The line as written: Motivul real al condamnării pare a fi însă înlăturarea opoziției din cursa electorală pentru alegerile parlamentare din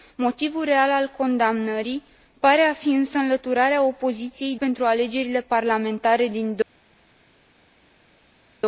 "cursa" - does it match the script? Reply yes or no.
no